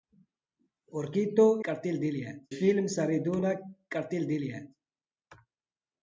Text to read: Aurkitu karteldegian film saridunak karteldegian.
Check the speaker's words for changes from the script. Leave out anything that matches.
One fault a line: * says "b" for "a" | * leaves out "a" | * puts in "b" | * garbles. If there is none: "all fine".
all fine